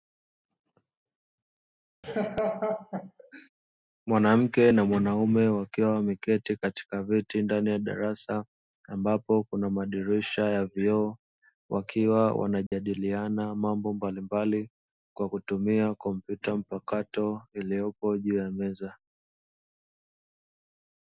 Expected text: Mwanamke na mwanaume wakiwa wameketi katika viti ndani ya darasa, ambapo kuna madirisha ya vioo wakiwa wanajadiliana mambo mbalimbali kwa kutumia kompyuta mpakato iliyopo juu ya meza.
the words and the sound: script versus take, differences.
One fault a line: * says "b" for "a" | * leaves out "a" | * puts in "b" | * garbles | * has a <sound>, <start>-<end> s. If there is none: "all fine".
* has a laugh, 2.0-3.5 s
* has a dropout, 12.7-12.7 s